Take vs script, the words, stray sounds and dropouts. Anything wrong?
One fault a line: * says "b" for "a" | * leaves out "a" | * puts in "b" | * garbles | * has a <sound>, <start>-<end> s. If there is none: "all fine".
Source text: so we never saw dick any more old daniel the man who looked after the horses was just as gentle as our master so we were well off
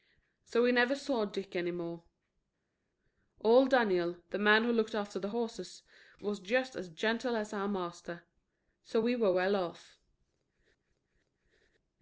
all fine